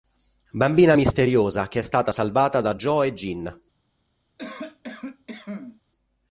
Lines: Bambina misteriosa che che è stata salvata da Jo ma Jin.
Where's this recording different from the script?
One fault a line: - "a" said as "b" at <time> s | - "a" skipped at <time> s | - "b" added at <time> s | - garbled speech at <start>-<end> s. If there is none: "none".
- "che" skipped at 1.8 s
- "ma" said as "e" at 3.0 s